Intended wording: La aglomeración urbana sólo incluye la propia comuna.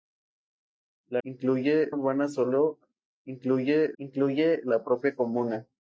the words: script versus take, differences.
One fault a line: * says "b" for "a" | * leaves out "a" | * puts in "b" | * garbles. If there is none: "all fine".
* says "incluye" for "aglomeración"
* puts in "incluye"